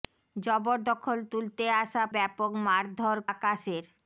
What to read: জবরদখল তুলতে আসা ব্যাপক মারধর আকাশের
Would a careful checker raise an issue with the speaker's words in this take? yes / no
no